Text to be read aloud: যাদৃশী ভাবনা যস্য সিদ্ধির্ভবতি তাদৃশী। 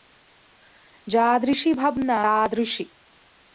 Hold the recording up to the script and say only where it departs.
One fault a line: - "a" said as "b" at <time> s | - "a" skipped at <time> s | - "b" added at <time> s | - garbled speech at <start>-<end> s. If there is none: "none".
- "যস্য সিদ্ধির্ভবতি" skipped at 2.2 s